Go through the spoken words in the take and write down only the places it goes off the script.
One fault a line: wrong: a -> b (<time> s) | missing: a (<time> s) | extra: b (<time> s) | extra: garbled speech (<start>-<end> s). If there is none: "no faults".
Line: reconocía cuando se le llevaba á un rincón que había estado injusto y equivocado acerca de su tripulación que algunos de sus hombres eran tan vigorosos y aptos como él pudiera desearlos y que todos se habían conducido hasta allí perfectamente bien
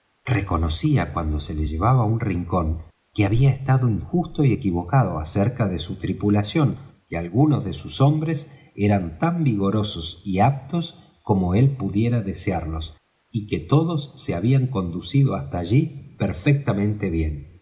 no faults